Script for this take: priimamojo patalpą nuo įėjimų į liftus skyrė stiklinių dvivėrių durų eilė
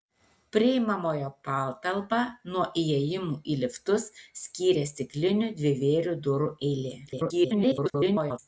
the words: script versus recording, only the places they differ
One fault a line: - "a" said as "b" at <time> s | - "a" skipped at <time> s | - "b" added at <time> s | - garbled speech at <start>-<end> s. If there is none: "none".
- garbled speech at 7.1-8.4 s